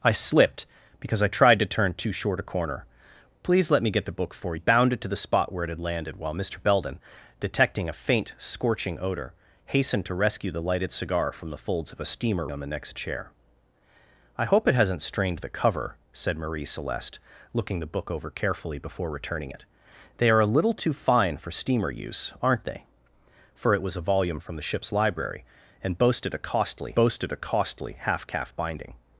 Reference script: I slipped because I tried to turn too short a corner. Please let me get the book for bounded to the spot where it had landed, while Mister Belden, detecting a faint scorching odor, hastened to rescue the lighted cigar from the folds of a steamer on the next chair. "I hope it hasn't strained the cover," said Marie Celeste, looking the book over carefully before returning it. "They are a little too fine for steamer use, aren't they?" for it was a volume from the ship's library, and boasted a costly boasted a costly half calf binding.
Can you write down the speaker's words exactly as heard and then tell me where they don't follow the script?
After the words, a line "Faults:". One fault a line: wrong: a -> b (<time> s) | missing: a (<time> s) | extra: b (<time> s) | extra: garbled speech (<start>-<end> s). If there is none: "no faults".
I slipped because I tried to turn too short a corner. Please let me get the book for bounded to the spot where it had landed, while Mister Belden, detecting a faint scorching odor, hastened to rescue the lighted cigar from the folds of a steamer on the next chair. "I hope it hasn't strained the cover," said Marie Celeste, looking the book over carefully before returning it. "They are a little too fine for steamer use, aren't they?" for it was a volume from the ship's library, and boasted a costly boasted a costly half calf binding.
Faults:
no faults